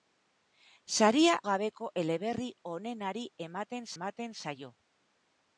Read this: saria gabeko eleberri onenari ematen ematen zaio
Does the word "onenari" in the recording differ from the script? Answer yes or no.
no